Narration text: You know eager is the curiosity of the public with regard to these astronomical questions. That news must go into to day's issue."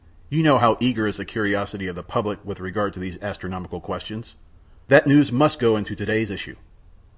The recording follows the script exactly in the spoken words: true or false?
false